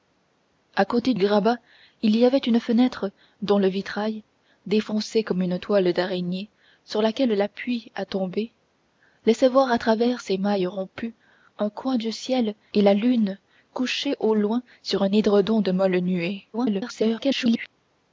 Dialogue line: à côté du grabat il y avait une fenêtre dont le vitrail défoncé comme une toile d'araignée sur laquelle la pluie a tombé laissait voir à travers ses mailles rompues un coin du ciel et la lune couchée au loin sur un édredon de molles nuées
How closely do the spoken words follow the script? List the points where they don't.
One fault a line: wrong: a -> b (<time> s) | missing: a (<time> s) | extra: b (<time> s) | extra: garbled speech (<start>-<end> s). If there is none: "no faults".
missing: du (1.1 s)
extra: garbled speech (16.5-17.7 s)